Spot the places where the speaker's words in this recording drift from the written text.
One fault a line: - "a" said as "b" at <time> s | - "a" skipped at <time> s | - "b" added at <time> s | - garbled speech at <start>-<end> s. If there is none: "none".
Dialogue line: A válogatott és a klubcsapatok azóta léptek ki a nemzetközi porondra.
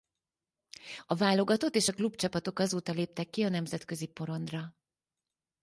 none